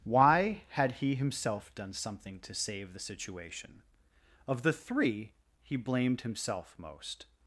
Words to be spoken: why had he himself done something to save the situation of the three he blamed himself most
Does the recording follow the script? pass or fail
pass